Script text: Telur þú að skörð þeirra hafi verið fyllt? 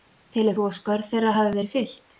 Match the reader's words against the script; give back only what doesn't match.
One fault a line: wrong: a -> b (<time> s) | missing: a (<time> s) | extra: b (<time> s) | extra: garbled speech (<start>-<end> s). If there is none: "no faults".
no faults